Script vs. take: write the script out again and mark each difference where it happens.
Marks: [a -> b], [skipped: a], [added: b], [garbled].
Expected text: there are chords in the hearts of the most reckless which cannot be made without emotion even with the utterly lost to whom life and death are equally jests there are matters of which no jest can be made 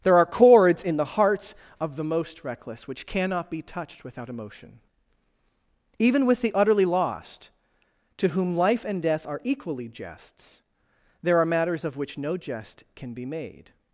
there are chords in the hearts of the most reckless which cannot be [made -> touched] without emotion even with the utterly lost to whom life and death are equally jests there are matters of which no jest can be made